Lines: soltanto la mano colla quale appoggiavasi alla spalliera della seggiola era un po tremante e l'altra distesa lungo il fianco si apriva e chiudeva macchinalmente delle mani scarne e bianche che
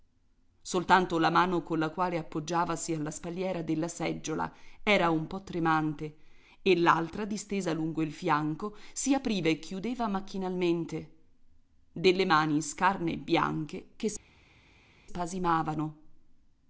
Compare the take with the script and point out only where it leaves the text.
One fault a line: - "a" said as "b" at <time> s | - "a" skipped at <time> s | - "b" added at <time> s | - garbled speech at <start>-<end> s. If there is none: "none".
none